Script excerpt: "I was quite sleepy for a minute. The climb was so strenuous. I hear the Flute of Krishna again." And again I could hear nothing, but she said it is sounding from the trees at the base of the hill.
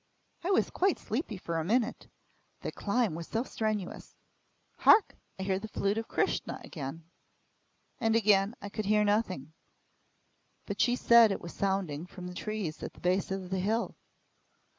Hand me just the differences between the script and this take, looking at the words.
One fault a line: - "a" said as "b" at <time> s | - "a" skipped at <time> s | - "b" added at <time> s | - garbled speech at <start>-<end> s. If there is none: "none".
- "Hark" added at 4.8 s
- "is" said as "was" at 11.4 s